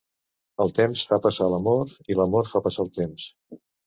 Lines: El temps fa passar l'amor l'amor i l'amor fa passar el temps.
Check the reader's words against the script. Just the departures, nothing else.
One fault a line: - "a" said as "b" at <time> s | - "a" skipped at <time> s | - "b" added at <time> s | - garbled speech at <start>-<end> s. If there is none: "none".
- "l'amor" skipped at 1.9 s